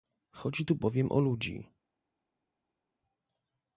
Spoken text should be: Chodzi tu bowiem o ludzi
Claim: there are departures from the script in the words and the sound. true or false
false